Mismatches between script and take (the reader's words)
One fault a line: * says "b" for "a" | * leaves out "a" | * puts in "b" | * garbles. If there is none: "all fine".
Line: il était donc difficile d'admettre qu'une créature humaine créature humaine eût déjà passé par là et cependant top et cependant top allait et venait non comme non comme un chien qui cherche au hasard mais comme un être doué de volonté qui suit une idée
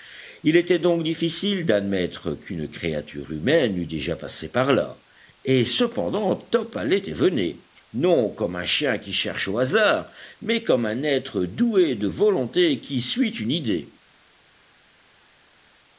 * leaves out "créature humaine"
* leaves out "et cependant top"
* leaves out "non comme"